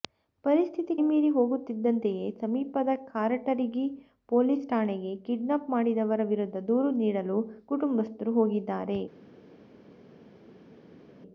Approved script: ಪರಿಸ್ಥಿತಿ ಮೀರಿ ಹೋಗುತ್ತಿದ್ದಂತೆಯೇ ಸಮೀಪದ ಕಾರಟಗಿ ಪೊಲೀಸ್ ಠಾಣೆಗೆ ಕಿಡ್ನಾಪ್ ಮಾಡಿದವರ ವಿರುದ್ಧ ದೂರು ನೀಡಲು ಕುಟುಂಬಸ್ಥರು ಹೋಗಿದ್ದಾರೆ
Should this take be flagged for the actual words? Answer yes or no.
no